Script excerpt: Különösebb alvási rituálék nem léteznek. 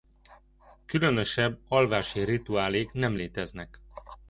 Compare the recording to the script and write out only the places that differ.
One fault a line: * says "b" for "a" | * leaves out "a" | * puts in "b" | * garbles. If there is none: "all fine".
all fine